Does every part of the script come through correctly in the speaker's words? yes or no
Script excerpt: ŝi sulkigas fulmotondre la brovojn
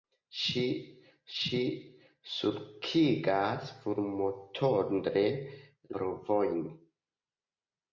no